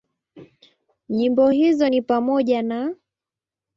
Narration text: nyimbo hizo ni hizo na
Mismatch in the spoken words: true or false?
true